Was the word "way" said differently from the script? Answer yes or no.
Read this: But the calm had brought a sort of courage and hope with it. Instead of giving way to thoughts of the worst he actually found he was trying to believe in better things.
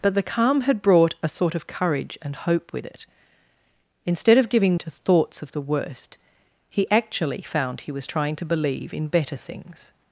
yes